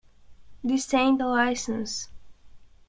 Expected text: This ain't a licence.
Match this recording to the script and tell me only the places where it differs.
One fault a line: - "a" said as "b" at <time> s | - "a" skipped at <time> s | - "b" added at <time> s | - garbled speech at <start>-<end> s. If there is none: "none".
none